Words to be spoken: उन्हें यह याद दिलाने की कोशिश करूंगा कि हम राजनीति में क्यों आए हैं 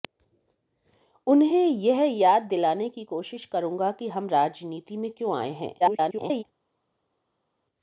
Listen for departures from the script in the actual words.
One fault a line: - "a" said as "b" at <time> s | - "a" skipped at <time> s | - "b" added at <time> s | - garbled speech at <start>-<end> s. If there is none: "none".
- garbled speech at 5.8-6.4 s